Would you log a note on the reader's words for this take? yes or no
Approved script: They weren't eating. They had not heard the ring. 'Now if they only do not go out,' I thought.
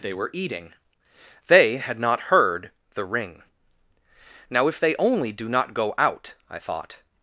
yes